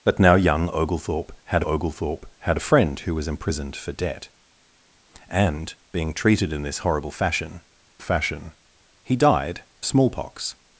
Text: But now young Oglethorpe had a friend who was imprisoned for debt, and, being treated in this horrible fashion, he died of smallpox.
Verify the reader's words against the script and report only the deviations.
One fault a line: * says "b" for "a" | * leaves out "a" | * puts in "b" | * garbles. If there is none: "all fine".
* puts in "Oglethorpe had"
* puts in "fashion"
* leaves out "of"